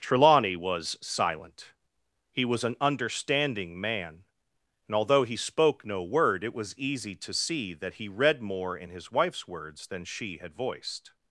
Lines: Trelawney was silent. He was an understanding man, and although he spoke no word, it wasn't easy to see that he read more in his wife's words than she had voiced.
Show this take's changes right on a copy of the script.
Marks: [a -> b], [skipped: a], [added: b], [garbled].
Trelawney was silent. He was an understanding man, and although he spoke no word, it [wasn't -> was] easy to see that he read more in his wife's words than she had voiced.